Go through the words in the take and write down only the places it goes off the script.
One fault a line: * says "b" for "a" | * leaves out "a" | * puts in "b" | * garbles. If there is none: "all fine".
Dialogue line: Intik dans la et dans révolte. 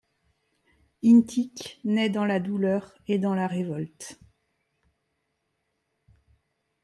* puts in "naît"
* puts in "douleur"
* puts in "la"